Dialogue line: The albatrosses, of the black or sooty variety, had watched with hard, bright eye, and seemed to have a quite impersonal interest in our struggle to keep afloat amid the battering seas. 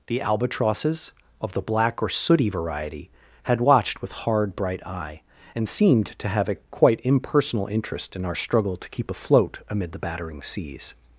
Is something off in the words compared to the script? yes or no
no